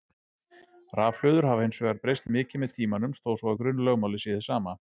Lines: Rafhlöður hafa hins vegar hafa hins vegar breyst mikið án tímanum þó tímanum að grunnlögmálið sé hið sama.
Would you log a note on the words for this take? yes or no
yes